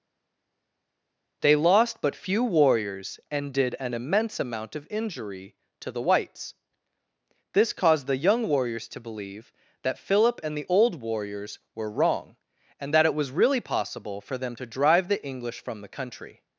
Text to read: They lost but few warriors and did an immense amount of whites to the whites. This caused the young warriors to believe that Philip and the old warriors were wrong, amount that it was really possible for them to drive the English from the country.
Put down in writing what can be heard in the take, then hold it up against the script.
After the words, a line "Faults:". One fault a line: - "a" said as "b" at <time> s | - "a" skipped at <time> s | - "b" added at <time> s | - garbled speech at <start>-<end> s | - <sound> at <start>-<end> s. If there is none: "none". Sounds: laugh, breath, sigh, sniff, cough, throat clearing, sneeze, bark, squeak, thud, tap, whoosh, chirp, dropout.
They lost but few warriors and did an immense amount of injury to the whites. This caused the young warriors to believe that Philip and the old warriors were wrong, and that it was really possible for them to drive the English from the country.
Faults:
- "whites" said as "injury" at 4.9 s
- "amount" said as "and" at 12.8 s